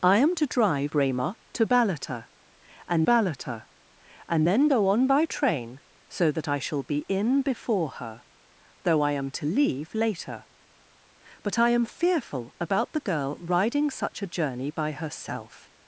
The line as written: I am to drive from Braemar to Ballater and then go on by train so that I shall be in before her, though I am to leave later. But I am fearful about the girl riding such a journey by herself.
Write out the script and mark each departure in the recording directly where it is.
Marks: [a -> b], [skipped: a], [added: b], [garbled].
I am to drive [skipped: from] Braemar to Ballater and [added: Ballater and] then go on by train so that I shall be in before her, though I am to leave later. But I am fearful about the girl riding such a journey by herself.